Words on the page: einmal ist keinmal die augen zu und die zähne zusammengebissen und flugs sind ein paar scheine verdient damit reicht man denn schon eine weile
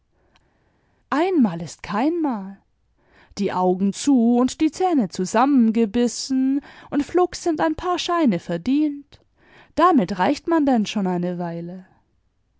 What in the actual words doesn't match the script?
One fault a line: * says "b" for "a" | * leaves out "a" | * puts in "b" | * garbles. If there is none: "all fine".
all fine